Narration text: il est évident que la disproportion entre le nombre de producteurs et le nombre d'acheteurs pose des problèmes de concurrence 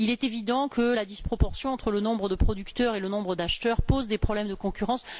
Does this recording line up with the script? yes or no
yes